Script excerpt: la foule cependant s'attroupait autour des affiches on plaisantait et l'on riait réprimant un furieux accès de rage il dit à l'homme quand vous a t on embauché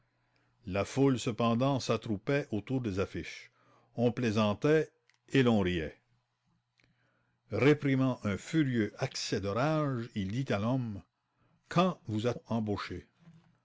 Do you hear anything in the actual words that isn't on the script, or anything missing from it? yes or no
yes